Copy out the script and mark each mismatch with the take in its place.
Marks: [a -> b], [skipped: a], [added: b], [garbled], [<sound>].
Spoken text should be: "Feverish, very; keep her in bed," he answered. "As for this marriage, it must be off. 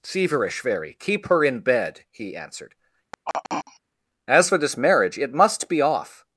"Feverish, very; keep her in bed," he answered. [throat clearing] "As for this marriage, it must be off.